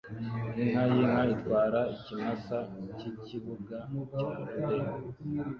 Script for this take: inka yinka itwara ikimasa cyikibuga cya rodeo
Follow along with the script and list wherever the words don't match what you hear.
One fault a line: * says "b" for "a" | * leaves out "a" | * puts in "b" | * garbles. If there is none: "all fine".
all fine